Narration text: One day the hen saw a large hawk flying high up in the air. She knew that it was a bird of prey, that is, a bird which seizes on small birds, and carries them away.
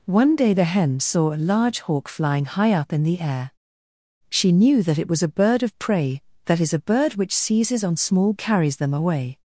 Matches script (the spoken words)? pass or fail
fail